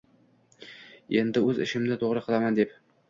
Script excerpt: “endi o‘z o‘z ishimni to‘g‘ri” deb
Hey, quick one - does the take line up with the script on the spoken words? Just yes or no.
no